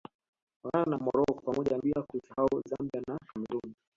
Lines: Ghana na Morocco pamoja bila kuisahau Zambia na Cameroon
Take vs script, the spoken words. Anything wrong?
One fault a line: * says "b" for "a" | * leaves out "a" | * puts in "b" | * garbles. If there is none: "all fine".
all fine